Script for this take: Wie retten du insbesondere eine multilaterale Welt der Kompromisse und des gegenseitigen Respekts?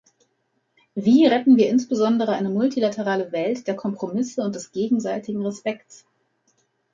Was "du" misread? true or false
true